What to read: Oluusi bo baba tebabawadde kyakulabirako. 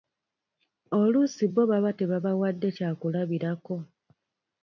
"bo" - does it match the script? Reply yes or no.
yes